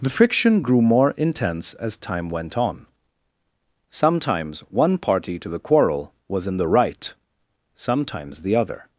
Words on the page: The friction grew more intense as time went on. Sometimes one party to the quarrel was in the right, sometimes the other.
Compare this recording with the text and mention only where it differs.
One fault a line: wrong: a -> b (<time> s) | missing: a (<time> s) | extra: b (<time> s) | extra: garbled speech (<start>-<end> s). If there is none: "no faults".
no faults